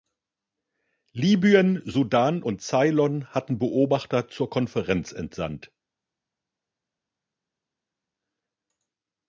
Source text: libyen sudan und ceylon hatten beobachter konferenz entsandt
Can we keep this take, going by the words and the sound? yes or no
no